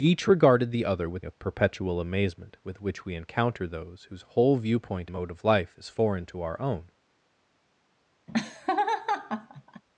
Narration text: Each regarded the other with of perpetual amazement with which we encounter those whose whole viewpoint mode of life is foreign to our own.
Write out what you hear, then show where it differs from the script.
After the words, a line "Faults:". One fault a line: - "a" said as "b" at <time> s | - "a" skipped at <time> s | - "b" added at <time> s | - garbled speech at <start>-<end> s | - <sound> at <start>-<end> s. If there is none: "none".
Each regarded the other with of perpetual amazement with which we encounter those whose whole viewpoint mode of life is foreign to our own.
Faults:
- laugh at 8.3-9.8 s